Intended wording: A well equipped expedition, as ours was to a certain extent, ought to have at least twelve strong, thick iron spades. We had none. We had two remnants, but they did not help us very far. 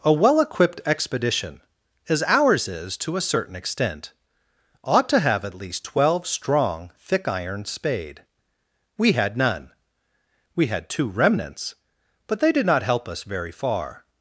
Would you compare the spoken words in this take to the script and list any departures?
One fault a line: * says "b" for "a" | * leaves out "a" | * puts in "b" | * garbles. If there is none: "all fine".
* says "is" for "was"
* says "spade" for "spades"